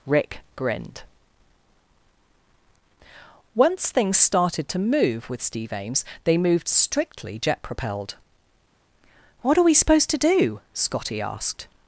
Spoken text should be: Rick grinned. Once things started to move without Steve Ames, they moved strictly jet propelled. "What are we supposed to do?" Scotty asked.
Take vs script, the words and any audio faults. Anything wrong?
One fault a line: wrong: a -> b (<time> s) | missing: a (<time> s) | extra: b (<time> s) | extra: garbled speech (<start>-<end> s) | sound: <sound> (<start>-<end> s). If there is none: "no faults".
wrong: without -> with (5.3 s)